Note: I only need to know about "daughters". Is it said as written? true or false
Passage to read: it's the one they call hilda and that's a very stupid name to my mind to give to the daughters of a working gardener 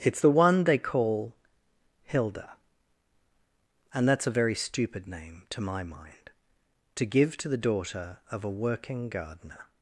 false